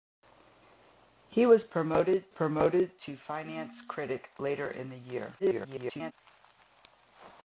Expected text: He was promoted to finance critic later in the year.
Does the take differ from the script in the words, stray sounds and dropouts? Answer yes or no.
yes